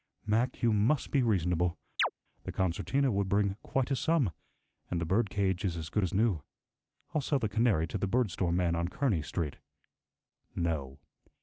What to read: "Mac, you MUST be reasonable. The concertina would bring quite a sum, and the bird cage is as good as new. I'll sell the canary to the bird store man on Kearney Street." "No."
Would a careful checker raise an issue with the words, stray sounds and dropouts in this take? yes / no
yes